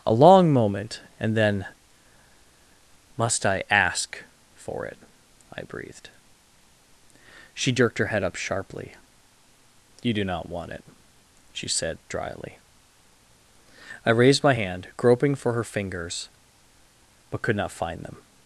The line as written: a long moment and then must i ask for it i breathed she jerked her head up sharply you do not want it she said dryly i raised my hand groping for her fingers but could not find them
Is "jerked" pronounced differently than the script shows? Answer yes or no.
no